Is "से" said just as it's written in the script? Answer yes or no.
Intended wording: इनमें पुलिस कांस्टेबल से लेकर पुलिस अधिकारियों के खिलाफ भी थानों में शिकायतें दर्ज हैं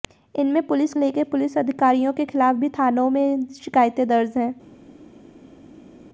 no